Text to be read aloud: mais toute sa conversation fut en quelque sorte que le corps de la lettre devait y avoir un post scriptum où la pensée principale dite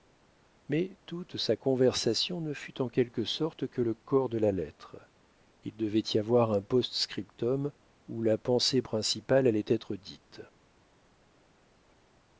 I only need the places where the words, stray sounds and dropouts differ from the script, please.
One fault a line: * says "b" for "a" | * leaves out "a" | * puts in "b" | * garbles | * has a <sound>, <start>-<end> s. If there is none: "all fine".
* puts in "ne"
* puts in "il"
* puts in "allait être"